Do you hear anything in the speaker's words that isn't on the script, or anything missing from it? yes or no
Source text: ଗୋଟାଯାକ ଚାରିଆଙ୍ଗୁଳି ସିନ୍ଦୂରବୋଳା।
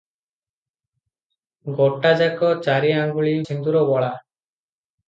no